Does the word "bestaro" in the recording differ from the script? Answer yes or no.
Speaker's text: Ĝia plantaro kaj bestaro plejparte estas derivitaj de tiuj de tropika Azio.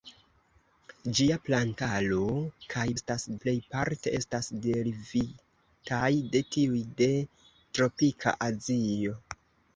yes